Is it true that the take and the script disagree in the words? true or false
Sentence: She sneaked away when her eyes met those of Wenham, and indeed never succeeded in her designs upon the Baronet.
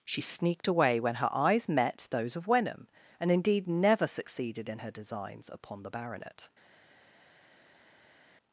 false